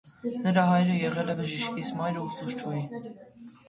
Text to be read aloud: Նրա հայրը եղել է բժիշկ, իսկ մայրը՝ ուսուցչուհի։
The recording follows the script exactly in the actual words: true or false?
true